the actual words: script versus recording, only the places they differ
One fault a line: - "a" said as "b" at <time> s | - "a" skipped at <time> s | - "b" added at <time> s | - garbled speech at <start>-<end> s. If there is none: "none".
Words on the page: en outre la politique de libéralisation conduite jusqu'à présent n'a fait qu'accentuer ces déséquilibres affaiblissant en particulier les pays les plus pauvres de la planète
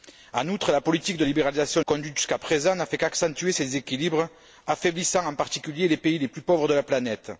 none